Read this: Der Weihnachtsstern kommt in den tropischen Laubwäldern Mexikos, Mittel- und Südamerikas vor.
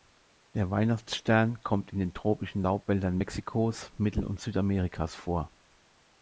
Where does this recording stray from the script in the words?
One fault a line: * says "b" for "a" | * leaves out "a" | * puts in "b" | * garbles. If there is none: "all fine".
all fine